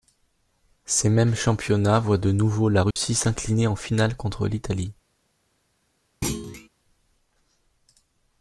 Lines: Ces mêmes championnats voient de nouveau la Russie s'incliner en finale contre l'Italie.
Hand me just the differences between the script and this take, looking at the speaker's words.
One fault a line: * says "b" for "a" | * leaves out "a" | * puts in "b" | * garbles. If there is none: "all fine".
all fine